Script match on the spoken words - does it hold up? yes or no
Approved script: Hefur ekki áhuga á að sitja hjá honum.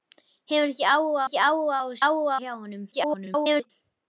no